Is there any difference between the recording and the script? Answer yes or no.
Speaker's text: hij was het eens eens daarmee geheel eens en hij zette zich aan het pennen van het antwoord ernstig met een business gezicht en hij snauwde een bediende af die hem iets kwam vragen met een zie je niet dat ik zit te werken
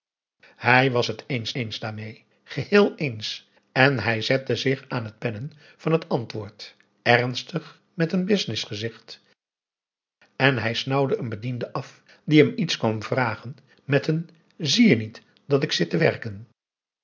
no